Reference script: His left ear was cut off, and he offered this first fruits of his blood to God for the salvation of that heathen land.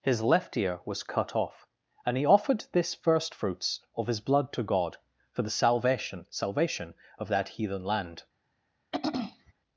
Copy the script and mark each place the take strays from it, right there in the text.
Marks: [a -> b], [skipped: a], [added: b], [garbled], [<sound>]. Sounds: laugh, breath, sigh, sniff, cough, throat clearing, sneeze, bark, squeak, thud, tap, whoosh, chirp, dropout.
His left ear was cut off, and he offered this first fruits of his blood to God for the salvation [added: salvation] of that heathen land. [throat clearing]